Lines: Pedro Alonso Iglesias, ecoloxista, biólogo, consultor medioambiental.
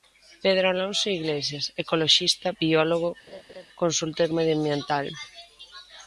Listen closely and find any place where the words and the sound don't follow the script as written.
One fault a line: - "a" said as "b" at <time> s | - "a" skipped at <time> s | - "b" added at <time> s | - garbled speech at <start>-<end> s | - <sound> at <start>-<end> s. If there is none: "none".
- laugh at 3.3-3.7 s